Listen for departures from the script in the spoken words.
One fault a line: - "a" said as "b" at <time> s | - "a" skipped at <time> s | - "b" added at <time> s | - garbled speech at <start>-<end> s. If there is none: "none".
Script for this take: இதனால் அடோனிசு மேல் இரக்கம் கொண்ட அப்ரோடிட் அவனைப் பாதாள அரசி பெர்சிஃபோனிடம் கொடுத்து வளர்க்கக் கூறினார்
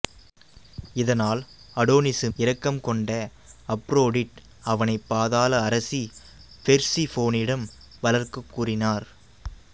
- "மேல்" skipped at 2.3 s
- "கொடுத்து" skipped at 7.7 s